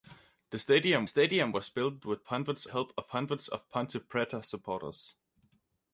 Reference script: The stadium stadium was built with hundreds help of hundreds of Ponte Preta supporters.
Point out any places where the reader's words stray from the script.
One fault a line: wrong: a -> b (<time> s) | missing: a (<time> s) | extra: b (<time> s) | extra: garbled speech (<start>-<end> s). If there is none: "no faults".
no faults